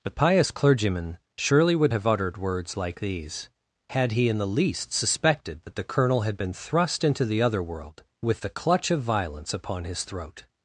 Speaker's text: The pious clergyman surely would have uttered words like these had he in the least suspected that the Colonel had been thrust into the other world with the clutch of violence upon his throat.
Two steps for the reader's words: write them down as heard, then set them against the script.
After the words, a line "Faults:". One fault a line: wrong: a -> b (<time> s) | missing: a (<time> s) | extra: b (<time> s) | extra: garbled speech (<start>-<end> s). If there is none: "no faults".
The pious clergyman surely would have uttered words like these had he in the least suspected that the Colonel had been thrust into the other world with the clutch of violence upon his throat.
Faults:
no faults